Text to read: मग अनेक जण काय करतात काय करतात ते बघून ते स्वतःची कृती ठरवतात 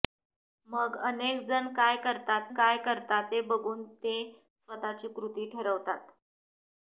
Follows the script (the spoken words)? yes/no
yes